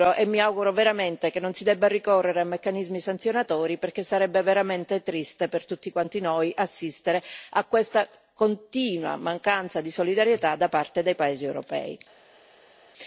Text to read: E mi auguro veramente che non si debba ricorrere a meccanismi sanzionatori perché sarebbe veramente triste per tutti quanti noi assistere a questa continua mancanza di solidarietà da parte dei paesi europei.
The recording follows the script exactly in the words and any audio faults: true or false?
true